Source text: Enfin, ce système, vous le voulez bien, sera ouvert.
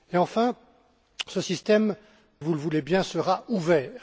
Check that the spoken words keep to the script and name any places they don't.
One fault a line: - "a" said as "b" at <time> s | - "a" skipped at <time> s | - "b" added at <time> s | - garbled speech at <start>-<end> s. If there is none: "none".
none